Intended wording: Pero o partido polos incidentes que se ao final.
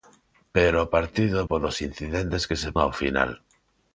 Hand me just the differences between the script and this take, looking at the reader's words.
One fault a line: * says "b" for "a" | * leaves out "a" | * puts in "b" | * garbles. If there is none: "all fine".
all fine